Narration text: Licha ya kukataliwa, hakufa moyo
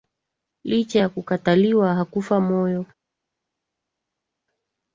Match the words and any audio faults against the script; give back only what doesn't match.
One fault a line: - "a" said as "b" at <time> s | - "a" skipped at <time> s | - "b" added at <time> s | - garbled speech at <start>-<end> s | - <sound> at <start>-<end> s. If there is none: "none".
none